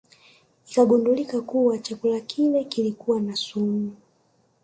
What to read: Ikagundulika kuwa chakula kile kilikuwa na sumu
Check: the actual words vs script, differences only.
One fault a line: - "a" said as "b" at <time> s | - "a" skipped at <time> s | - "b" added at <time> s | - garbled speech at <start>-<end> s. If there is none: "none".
none